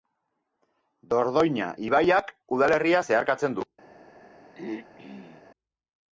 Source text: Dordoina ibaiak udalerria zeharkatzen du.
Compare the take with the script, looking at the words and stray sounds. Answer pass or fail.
fail